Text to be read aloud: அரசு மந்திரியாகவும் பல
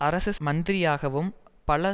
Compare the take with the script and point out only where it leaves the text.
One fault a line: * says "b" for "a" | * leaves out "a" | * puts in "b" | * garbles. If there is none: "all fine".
all fine